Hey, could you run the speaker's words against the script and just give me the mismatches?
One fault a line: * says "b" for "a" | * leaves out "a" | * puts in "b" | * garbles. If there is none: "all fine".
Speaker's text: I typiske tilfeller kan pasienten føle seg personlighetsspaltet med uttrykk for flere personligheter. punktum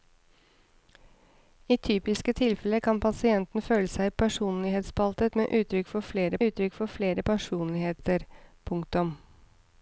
* puts in "uttrykk for flere"